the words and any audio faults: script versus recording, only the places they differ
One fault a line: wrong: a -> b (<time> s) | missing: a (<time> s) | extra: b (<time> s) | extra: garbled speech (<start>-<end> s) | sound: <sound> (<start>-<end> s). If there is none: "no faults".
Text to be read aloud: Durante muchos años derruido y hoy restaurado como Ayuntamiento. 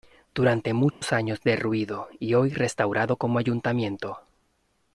sound: dropout (0.9-1.0 s)